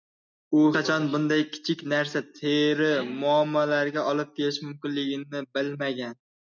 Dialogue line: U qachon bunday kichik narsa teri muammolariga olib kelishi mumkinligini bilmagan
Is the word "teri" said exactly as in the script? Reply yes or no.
yes